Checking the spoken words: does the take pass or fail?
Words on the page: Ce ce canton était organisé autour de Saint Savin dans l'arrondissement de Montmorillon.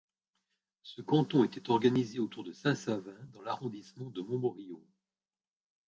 fail